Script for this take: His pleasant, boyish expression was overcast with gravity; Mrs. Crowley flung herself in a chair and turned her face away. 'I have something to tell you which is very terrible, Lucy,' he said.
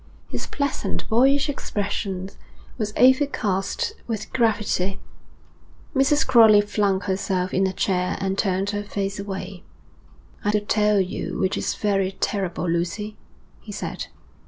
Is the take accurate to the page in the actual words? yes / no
no